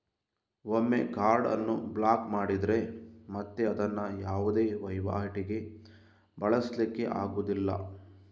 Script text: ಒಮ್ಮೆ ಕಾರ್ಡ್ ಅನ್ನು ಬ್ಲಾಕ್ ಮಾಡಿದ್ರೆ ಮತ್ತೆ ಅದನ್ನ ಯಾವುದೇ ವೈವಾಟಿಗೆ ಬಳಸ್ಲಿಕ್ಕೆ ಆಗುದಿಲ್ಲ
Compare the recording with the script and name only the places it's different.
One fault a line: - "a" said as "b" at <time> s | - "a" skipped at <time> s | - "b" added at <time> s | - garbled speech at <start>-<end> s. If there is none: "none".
none